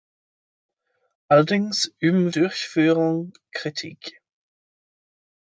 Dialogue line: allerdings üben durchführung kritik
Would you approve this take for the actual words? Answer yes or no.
yes